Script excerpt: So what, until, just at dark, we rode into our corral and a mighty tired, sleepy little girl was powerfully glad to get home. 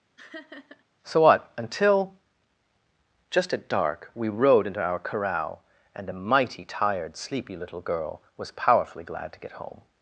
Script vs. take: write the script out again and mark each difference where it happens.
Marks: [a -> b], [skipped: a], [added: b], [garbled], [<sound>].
[laugh] So what, until, just at dark, we rode into our corral and a mighty tired, sleepy little girl was powerfully glad to get home.